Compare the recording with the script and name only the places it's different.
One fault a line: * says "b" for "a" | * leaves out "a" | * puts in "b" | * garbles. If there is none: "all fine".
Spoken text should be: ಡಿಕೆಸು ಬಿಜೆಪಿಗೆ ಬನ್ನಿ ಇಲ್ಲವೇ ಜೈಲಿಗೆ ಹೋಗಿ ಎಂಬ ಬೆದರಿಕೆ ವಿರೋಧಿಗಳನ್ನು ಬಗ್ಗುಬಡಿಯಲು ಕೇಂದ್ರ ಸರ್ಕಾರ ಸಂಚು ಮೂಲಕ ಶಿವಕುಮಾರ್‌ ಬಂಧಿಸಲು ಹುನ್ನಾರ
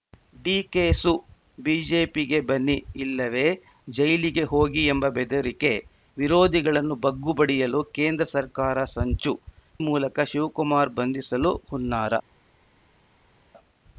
all fine